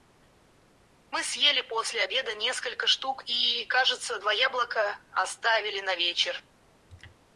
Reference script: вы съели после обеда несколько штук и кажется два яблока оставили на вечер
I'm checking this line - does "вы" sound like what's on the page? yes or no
no